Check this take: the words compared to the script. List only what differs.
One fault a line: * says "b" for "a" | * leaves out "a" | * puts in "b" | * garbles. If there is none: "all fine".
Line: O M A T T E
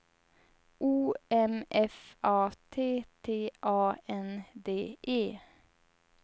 * puts in "F"
* puts in "A N D"